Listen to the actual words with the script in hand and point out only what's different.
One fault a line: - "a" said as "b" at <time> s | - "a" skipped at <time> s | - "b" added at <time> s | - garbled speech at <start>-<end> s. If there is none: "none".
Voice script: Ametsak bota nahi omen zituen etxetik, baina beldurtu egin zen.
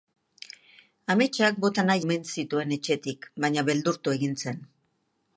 none